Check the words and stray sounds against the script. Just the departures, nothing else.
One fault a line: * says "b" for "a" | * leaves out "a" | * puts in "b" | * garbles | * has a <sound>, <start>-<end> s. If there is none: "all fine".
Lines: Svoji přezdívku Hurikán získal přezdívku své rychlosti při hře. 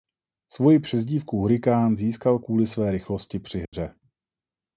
* says "kvůli" for "přezdívku"
* has a dropout, 3.7-3.7 s